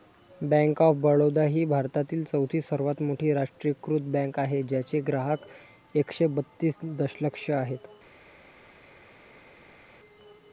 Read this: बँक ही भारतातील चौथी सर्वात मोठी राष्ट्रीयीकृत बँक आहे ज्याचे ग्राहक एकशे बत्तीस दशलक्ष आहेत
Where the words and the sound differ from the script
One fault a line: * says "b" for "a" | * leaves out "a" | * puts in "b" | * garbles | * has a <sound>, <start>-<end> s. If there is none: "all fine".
* puts in "ऑफ बडोदा"